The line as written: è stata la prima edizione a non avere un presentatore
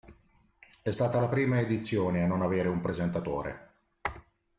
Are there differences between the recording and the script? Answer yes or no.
no